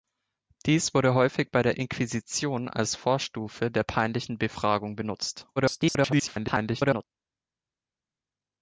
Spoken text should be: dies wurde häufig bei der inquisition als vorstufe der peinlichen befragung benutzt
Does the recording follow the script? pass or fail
fail